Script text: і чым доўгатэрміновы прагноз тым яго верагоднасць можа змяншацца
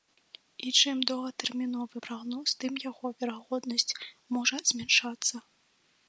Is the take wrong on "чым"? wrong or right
right